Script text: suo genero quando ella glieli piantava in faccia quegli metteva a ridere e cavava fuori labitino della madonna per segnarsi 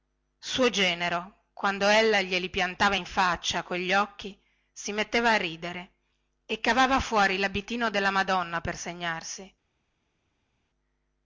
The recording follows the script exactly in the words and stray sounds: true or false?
false